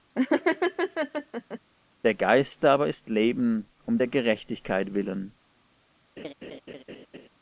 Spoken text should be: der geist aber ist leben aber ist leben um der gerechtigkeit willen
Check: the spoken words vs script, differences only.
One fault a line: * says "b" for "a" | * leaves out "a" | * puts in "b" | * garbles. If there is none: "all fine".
* leaves out "aber ist leben"